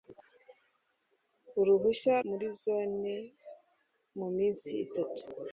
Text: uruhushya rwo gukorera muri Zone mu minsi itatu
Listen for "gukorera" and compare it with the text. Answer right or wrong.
wrong